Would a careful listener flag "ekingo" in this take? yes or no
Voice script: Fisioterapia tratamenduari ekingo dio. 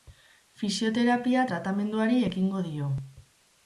no